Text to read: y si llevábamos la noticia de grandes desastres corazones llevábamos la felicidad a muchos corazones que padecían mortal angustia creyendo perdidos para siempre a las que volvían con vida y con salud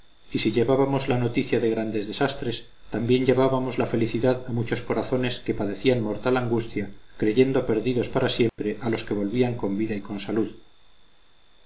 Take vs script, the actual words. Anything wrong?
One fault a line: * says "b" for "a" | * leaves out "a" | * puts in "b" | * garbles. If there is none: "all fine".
* says "también" for "corazones"
* says "los" for "las"